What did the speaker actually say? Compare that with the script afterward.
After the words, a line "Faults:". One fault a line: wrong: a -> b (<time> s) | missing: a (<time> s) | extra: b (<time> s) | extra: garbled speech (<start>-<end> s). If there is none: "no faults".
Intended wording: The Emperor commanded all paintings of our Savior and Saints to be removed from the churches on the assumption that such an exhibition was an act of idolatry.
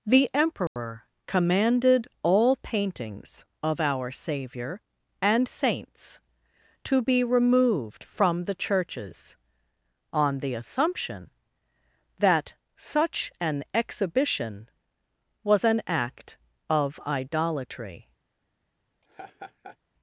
The Emperor commanded all paintings of our Savior and Saints to be removed from the churches on the assumption that such an exhibition was an act of idolatry.
Faults:
no faults